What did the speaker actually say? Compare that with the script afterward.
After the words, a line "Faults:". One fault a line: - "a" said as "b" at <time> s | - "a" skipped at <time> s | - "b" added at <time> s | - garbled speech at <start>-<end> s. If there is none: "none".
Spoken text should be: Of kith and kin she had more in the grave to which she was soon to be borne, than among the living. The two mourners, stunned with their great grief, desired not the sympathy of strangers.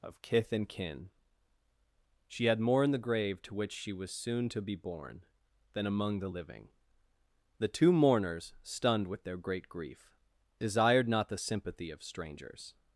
Of kith and kin she had more in the grave to which she was soon to be borne, than among the living. The two mourners, stunned with their great grief, desired not the sympathy of strangers.
Faults:
none